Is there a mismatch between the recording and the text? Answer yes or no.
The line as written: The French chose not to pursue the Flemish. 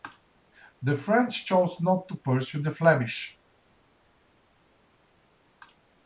no